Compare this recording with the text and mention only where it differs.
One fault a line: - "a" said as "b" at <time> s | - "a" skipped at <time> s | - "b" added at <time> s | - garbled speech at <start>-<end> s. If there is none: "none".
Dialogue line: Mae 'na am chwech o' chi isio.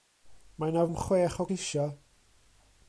none